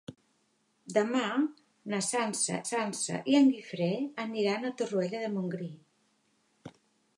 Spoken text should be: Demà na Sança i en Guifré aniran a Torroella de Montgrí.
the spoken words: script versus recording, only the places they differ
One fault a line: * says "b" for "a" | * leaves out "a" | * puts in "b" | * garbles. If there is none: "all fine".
* puts in "Sança"